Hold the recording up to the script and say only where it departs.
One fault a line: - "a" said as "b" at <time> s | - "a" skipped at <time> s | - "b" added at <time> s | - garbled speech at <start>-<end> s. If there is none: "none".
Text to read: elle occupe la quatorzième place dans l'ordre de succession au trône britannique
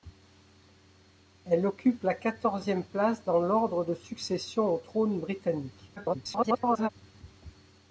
- garbled speech at 6.0-6.9 s